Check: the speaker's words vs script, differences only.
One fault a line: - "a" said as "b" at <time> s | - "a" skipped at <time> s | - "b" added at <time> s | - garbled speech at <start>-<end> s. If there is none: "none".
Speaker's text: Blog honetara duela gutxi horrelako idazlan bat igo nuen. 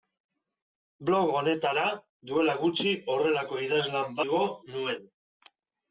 - "bat" skipped at 4.2 s